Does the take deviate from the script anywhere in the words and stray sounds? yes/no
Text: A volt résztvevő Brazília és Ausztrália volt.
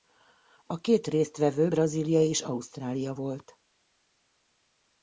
yes